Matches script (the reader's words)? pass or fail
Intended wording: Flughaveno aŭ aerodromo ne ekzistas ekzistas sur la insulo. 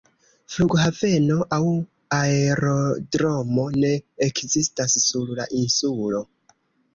fail